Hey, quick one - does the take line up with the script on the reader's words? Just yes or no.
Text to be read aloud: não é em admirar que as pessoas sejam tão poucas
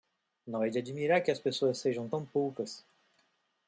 no